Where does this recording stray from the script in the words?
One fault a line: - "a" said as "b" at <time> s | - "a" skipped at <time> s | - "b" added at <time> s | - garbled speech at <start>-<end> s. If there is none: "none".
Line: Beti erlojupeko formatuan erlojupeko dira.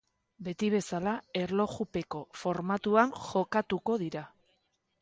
- "bezala" added at 0.8 s
- "erlojupeko" said as "jokatuko" at 3.3 s